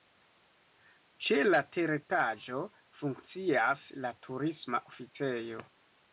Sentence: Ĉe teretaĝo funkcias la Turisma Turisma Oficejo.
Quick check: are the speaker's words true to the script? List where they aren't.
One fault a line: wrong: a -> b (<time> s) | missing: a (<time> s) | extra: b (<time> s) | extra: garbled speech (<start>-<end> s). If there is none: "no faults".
extra: la (1.5 s)
missing: Turisma (4.8 s)